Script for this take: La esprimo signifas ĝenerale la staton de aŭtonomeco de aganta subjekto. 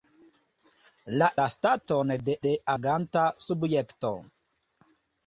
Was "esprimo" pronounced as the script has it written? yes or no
no